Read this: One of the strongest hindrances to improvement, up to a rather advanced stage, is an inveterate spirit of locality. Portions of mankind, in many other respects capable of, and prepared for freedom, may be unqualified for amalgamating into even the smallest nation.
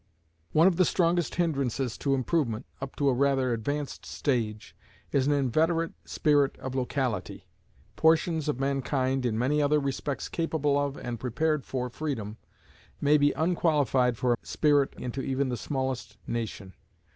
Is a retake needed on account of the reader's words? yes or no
yes